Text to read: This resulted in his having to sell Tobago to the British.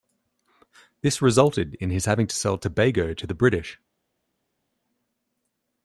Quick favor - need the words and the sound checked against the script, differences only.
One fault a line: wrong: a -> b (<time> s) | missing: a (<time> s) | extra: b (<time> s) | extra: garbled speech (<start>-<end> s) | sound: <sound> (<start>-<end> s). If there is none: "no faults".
no faults